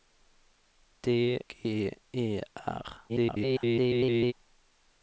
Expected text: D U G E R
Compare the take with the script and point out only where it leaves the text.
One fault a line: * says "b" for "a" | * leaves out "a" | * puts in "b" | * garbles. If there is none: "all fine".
* leaves out "U"
* garbles